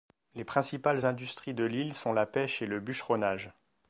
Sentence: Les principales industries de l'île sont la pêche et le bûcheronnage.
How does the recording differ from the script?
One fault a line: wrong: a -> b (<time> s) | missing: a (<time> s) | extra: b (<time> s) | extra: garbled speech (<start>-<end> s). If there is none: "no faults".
no faults